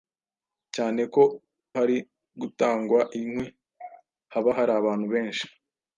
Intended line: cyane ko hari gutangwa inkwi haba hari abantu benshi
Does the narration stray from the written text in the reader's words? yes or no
no